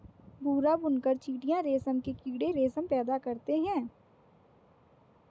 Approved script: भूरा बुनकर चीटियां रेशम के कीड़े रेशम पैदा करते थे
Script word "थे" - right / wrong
wrong